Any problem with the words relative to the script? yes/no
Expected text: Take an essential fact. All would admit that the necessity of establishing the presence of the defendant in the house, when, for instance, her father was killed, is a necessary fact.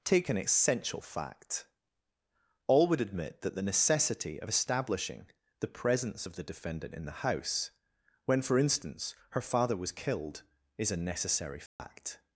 no